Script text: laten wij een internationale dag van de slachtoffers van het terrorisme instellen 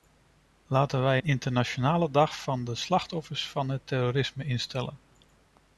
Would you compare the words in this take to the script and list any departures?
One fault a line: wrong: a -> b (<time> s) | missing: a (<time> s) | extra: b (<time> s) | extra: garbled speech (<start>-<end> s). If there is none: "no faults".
no faults